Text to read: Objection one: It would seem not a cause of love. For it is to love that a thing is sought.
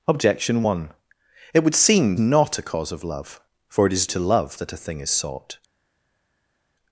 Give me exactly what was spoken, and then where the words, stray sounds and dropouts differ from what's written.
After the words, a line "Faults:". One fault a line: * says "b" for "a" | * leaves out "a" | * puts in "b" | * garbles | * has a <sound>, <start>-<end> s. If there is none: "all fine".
Objection one: It would seem not a cause of love. For it is to love that a thing is sought.
Faults:
all fine